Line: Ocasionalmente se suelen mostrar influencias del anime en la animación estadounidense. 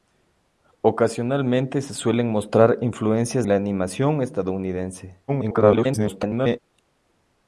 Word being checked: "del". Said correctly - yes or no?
no